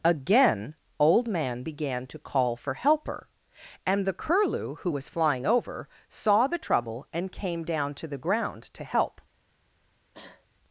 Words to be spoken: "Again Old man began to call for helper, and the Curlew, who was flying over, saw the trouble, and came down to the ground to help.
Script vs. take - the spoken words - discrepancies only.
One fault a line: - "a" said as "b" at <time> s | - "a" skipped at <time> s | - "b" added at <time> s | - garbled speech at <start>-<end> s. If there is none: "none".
none